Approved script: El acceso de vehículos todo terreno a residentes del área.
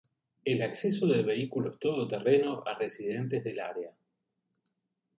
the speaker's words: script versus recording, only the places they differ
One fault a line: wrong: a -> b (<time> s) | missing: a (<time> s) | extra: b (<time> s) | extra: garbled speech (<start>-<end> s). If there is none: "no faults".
no faults